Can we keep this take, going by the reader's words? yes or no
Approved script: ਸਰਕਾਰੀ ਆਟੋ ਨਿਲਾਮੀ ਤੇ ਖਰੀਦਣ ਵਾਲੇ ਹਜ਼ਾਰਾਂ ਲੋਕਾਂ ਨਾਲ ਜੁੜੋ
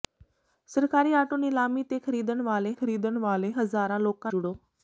no